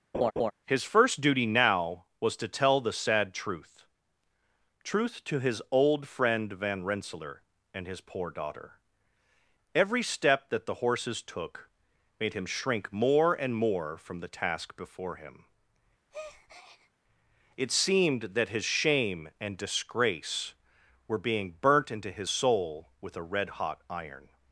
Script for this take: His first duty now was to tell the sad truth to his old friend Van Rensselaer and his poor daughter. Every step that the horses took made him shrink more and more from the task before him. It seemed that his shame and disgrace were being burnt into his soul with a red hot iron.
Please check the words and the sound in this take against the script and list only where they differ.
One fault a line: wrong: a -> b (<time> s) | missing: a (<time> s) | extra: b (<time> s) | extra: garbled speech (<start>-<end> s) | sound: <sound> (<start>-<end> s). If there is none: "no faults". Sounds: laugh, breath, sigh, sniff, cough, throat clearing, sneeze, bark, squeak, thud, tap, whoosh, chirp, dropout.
sound: laugh (0.1-0.5 s)
extra: truth (4.8 s)
sound: breath (16.1-16.9 s)